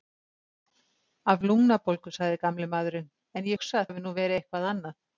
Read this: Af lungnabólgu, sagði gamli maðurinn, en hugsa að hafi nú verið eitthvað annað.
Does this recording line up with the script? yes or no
yes